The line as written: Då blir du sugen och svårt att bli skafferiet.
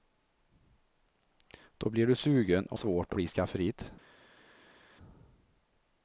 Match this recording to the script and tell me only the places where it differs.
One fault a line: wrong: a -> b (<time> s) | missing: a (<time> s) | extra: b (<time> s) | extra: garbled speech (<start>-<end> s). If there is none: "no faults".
no faults